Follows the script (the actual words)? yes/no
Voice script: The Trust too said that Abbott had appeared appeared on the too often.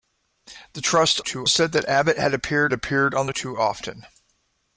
yes